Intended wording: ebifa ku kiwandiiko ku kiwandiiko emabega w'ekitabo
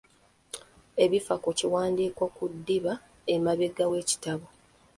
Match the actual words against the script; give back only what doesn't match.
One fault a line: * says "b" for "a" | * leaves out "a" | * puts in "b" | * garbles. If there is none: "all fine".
* says "ddiba" for "kiwandiiko"